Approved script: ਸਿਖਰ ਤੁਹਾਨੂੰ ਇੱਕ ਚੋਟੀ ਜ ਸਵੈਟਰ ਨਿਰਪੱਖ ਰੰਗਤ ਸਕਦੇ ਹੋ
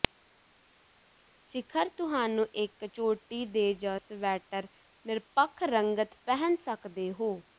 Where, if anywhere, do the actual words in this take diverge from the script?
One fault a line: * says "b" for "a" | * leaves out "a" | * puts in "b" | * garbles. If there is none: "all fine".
* puts in "ਦੇ"
* puts in "ਪਹਿਨ"